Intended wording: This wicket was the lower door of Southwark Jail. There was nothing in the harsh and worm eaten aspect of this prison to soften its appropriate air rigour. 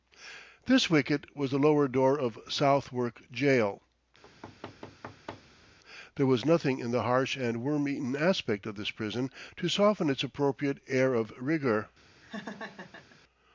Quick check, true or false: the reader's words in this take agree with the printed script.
false